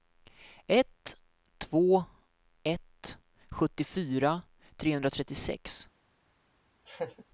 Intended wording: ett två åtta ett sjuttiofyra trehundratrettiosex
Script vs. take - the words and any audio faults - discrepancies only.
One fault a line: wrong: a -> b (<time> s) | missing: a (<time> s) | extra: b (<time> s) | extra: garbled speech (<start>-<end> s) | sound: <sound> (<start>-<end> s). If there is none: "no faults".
missing: åtta (2.0 s)
sound: laugh (6.9-7.2 s)